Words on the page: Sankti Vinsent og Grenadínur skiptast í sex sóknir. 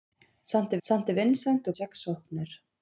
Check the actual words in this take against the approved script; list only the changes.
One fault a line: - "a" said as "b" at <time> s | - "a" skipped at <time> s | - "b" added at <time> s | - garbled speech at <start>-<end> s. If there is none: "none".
- "sankti" added at 0.9 s
- "Grenadínur skiptast" skipped at 1.8 s